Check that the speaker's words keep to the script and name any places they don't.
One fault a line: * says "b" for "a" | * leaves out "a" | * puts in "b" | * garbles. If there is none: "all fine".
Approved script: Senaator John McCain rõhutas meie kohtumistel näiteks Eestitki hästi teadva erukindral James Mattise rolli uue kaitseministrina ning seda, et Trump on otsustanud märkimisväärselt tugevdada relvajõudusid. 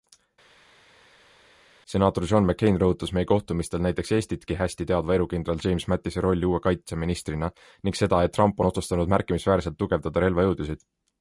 all fine